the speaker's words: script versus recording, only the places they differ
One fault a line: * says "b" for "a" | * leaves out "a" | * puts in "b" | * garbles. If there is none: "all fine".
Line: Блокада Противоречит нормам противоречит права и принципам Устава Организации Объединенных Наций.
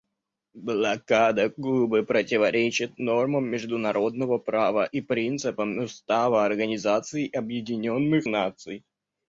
* puts in "Кубы"
* says "международного" for "противоречит"